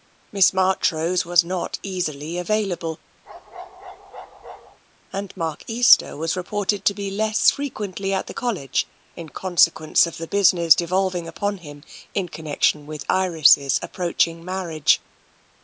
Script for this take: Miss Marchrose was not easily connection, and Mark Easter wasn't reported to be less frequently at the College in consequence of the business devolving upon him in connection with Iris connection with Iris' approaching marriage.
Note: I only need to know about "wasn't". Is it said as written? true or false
false